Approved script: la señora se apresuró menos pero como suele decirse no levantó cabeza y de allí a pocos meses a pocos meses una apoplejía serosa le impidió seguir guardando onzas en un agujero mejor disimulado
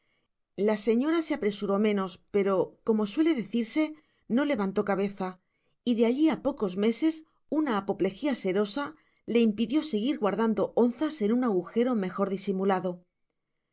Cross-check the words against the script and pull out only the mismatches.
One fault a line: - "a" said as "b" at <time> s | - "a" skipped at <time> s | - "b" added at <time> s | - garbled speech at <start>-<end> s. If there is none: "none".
- "a pocos meses" skipped at 7.2 s